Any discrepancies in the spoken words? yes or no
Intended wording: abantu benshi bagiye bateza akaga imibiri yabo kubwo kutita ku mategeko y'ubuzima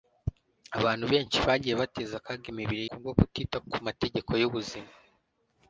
yes